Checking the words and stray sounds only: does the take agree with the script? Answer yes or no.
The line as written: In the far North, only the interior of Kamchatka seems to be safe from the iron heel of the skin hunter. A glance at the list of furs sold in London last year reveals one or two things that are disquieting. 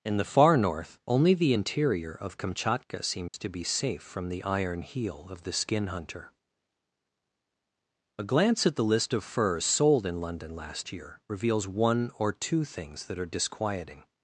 no